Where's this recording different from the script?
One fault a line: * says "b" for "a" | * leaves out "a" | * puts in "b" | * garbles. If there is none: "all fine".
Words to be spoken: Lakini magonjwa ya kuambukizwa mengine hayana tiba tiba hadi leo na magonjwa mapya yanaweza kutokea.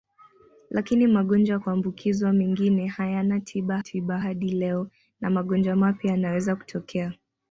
all fine